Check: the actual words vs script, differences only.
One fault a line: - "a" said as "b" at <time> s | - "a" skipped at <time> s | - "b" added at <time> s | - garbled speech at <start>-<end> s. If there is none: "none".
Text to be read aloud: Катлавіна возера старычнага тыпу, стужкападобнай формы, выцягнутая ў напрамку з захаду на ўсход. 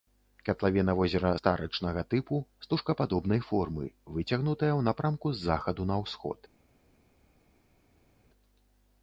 none